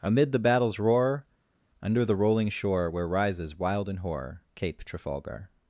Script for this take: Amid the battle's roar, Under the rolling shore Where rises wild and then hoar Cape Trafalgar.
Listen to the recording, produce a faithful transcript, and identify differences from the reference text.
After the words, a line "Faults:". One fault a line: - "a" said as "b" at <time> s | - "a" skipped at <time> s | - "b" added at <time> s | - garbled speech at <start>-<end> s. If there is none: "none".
Amid the battle's roar, Under the rolling shore Where rises wild and hoar Cape Trafalgar.
Faults:
- "then" skipped at 4.0 s